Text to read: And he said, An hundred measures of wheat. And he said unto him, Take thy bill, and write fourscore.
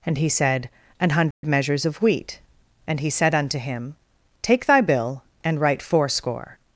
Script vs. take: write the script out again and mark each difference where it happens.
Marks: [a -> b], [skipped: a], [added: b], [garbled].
And he said, An hundred measures of wheat. And he said unto him, Take thy bill, and write fourscore.